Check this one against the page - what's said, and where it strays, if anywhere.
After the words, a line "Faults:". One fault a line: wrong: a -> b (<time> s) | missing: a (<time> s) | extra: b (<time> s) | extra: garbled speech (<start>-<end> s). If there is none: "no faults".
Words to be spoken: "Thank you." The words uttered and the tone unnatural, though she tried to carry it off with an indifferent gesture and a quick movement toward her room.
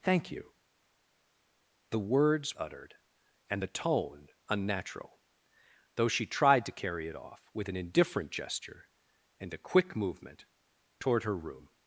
"Thank you." The words uttered and the tone unnatural, though she tried to carry it off with an indifferent gesture and a quick movement toward her room.
Faults:
no faults